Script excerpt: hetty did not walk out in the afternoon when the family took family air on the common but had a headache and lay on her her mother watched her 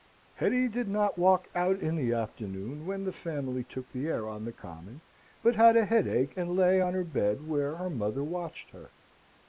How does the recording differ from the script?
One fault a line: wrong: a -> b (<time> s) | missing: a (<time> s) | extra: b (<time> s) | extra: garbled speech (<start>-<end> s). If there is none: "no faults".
wrong: family -> the (3.9 s)
extra: bed where (7.0 s)